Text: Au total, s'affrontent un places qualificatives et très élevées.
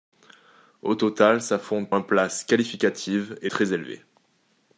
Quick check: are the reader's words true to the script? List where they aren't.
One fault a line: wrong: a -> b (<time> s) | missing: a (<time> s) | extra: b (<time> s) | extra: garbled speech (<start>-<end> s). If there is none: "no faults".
no faults